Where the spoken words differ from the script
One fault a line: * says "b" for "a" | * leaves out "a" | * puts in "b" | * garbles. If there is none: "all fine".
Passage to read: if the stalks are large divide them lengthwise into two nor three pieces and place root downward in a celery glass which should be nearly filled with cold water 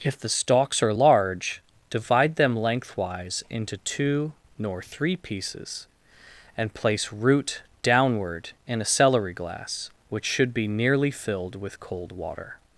all fine